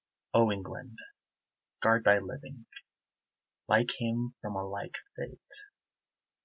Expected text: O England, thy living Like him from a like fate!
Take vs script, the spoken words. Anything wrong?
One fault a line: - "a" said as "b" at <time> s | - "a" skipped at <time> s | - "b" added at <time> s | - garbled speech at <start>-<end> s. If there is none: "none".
- "guard" added at 1.8 s